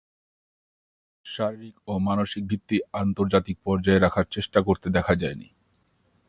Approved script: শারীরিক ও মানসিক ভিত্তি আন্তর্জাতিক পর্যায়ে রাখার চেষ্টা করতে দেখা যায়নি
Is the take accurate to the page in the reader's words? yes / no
yes